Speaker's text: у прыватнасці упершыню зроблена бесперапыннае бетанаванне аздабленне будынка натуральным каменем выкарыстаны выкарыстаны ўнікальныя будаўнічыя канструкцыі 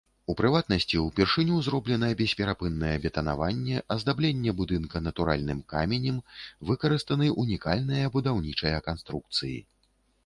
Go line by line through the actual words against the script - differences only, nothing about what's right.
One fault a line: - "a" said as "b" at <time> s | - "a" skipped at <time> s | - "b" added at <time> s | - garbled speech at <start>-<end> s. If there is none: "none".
- "выкарыстаны" skipped at 7.3 s